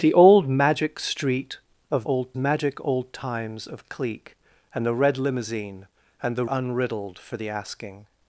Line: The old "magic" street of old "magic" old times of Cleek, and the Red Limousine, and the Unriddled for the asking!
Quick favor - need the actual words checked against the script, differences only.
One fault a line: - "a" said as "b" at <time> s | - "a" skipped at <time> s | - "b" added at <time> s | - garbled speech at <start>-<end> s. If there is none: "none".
none